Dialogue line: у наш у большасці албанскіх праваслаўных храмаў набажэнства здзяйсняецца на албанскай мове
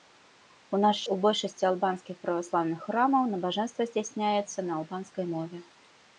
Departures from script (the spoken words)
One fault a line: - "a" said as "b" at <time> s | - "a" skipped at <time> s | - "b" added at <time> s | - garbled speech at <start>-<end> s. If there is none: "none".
none